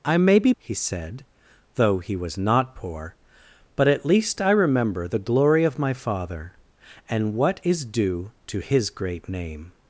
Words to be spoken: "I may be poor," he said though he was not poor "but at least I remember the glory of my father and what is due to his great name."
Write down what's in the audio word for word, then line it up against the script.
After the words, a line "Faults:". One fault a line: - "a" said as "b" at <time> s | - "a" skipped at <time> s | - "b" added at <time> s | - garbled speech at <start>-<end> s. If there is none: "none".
"I may be," he said though he was not poor "but at least I remember the glory of my father and what is due to his great name."
Faults:
- "poor" skipped at 0.5 s